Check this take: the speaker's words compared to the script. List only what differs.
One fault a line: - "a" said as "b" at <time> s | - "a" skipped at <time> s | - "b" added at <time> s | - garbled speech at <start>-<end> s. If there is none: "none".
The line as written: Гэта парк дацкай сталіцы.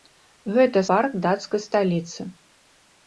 none